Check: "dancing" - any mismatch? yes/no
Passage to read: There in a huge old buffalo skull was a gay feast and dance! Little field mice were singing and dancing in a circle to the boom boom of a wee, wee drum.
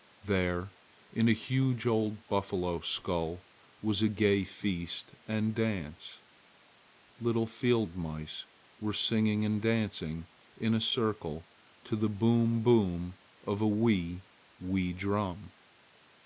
no